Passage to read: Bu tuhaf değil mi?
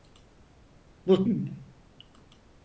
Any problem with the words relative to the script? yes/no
yes